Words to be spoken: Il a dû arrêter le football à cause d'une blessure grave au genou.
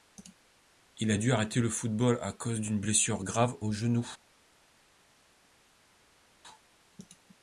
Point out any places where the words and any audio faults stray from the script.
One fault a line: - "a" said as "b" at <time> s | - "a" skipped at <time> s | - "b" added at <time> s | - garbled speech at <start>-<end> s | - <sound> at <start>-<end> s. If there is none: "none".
none